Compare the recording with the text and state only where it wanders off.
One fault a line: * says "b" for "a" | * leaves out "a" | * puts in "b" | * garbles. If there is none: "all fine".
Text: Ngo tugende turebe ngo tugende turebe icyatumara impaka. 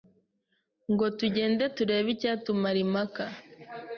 * leaves out "ngo tugende turebe"